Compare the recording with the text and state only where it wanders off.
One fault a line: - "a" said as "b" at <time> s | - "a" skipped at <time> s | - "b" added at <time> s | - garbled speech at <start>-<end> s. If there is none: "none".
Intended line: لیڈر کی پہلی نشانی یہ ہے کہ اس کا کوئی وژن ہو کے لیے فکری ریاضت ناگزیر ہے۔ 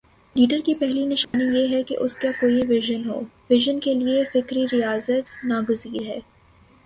- "وژن" added at 3.5 s